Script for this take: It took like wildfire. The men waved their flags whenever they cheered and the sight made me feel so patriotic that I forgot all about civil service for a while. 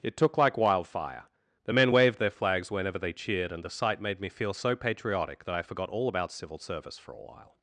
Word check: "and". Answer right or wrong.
right